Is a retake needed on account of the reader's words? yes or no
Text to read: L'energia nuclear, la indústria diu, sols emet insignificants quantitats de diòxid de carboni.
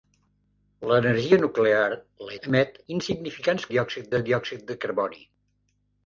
yes